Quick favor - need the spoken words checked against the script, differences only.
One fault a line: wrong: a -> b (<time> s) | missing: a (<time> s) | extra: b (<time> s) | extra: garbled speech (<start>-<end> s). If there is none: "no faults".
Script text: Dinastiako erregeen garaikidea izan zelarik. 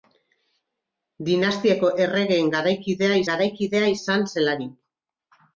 extra: garaikidea (3.3 s)